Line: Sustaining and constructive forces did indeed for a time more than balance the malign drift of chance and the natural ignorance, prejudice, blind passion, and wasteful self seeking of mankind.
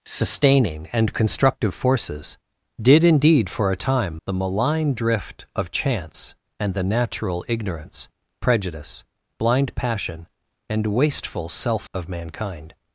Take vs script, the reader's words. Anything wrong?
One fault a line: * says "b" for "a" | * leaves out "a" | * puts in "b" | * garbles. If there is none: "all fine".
* leaves out "more than balance"
* leaves out "seeking"